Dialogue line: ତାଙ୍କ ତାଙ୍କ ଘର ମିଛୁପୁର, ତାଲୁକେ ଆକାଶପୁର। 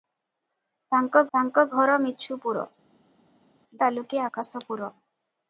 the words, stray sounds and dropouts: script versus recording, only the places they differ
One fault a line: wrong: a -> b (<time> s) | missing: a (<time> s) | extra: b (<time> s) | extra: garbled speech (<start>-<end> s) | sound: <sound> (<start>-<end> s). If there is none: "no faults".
no faults